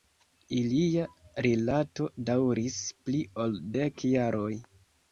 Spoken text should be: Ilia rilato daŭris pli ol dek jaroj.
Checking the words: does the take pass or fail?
pass